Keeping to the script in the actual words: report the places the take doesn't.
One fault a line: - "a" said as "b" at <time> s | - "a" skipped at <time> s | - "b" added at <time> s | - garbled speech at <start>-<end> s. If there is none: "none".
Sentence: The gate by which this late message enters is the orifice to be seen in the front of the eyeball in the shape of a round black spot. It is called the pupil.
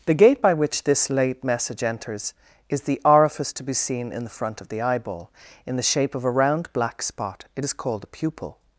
none